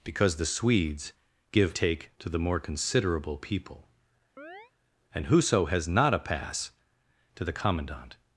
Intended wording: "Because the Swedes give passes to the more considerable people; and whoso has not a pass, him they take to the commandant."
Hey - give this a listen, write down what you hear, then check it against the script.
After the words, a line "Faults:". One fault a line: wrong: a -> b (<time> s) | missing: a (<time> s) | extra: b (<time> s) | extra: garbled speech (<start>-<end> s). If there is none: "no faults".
"Because the Swedes give take to the more considerable people; and whoso has not a pass, to the commandant."
Faults:
wrong: passes -> take (1.7 s)
missing: him they take (6.7 s)